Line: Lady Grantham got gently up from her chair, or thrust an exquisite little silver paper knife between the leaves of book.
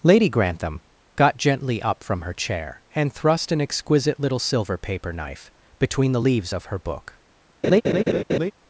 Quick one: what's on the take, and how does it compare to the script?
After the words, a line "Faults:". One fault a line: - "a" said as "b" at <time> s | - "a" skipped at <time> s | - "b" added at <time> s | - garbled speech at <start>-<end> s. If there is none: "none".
Lady Grantham got gently up from her chair, and thrust an exquisite little silver paper knife between the leaves of her book.
Faults:
- "or" said as "and" at 3.0 s
- "her" added at 6.7 s